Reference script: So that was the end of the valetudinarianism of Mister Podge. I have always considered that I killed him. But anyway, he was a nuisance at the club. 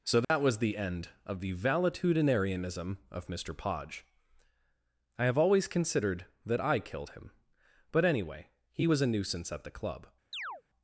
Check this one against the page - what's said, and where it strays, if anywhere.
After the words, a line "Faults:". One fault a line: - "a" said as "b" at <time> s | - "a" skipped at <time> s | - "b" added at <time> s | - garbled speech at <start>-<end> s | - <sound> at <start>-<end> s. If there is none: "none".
So that was the end of the valetudinarianism of Mister Podge. I have always considered that I killed him. But anyway, he was a nuisance at the club.
Faults:
- dropout at 0.2-0.3 s
- chirp at 10.3-10.6 s